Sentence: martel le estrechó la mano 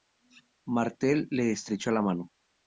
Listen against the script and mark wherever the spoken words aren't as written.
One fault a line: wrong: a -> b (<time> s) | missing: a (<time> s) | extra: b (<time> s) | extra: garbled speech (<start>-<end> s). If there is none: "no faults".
no faults